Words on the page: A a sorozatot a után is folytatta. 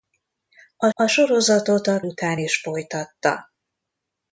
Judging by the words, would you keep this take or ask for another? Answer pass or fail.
pass